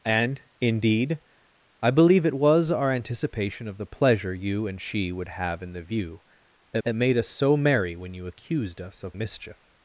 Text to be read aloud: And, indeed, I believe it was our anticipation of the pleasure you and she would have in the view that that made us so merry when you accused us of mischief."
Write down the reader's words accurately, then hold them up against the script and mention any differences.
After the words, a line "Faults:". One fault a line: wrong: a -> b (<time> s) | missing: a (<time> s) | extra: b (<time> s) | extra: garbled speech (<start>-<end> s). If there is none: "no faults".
And, indeed, I believe it was our anticipation of the pleasure you and she would have in the view that that made us so merry when you accused us of mischief."
Faults:
no faults